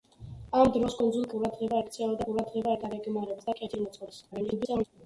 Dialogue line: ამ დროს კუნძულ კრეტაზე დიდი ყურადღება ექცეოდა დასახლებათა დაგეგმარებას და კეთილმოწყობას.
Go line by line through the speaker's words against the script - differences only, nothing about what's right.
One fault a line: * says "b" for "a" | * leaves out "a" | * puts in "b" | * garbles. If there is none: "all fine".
* leaves out "კრეტაზე დიდი"
* says "ყურადღება" for "დასახლებათა"
* garbles